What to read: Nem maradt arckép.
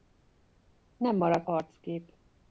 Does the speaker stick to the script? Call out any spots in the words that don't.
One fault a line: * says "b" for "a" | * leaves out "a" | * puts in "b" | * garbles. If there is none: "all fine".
all fine